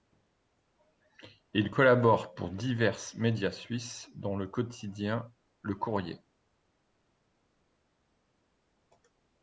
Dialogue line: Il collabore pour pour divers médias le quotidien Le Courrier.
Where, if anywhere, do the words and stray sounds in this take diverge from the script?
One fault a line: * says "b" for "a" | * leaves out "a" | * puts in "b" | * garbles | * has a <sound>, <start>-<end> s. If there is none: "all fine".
* leaves out "pour"
* puts in "suisses dont"